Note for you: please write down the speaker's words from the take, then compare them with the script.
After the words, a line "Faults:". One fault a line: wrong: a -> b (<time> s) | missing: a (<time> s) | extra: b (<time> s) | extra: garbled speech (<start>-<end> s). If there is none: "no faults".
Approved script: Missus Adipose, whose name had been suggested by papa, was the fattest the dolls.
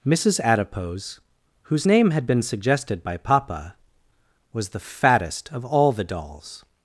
Missus Adipose, whose name had been suggested by papa, was the fattest of all the dolls.
Faults:
extra: of all (5.5 s)